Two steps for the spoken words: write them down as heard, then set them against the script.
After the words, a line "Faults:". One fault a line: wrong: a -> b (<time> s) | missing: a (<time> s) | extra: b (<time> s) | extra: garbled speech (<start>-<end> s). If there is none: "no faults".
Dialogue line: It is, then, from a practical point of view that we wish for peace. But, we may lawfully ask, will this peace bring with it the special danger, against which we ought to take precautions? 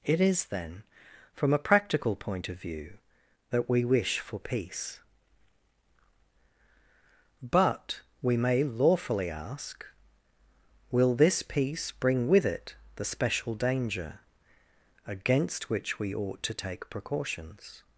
It is, then, from a practical point of view that we wish for peace. But, we may lawfully ask, will this peace bring with it the special danger, against which we ought to take precautions?
Faults:
no faults